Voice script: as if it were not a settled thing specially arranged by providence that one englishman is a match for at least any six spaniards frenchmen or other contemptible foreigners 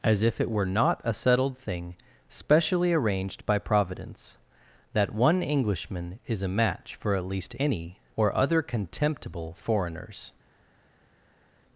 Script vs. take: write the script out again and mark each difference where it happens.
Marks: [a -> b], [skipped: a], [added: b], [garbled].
as if it were not a settled thing specially arranged by providence that one englishman is a match for at least any [skipped: six spaniards frenchmen] or other contemptible foreigners